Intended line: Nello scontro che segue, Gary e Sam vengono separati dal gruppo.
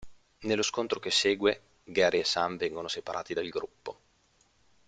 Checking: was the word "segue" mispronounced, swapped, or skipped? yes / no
no